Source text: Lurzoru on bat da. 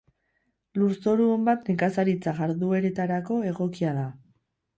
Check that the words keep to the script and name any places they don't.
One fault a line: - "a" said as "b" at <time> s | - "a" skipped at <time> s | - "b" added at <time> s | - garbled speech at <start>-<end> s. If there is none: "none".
- "nekazaritza jardueretarako egokia" added at 1.7 s